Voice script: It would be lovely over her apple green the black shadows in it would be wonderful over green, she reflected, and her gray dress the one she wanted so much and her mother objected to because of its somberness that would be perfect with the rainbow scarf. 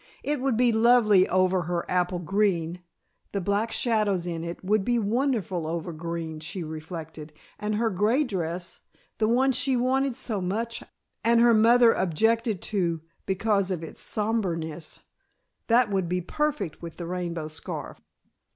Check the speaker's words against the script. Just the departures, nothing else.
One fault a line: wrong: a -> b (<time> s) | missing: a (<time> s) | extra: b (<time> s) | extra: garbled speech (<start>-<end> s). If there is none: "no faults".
no faults